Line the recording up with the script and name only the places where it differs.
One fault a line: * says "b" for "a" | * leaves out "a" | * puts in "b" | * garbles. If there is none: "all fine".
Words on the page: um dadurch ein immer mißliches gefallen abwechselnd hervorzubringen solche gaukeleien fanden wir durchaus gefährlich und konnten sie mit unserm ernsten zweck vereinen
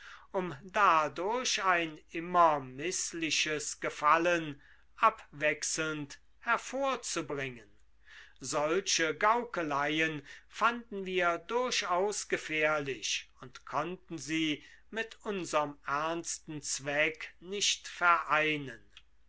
* puts in "nicht"